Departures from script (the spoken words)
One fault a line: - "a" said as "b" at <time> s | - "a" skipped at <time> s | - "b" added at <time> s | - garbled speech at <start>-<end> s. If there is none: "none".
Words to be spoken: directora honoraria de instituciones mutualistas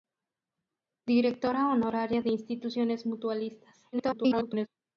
- garbled speech at 3.9-4.7 s